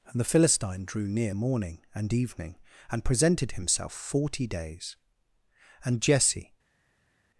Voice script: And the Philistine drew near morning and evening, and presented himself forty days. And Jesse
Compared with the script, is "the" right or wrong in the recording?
right